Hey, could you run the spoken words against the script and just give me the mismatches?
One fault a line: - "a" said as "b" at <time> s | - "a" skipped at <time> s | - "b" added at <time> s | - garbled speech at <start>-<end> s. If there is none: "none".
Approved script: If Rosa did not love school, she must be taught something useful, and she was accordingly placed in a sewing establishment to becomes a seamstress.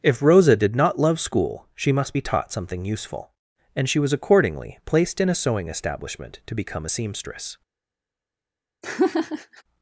- "becomes" said as "become" at 6.5 s